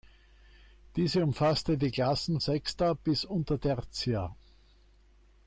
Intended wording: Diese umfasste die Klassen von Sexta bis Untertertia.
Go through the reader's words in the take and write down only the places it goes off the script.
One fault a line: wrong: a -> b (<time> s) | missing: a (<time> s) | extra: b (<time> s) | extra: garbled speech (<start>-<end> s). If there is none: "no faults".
missing: von (2.4 s)